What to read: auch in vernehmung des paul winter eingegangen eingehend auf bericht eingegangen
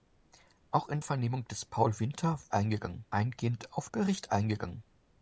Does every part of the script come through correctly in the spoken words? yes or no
yes